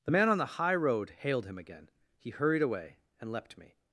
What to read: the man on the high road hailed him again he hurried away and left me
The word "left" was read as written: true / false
false